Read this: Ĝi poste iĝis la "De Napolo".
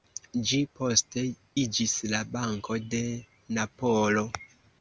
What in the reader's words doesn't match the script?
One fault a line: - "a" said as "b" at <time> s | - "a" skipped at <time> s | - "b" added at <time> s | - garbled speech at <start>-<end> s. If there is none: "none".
- "Banko" added at 2.3 s